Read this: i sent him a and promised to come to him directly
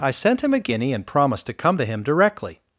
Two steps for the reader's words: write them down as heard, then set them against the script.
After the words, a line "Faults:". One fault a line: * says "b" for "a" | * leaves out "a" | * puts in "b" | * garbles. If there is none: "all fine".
i sent him a guinea and promised to come to him directly
Faults:
* puts in "guinea"